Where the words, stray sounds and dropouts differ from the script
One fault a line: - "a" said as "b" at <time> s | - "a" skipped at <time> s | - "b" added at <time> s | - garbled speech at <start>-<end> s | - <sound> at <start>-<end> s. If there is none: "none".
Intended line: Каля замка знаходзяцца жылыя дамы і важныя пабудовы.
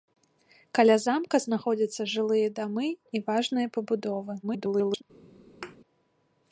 - garbled speech at 4.4-5.0 s
- thud at 5.6-5.8 s